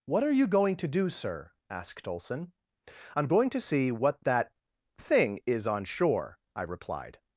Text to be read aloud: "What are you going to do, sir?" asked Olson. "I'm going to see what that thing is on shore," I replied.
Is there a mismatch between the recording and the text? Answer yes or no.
no